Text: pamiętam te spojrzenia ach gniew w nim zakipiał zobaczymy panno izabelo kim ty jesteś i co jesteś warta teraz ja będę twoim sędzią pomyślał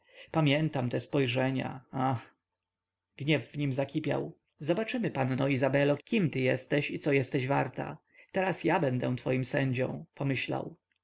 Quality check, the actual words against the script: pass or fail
pass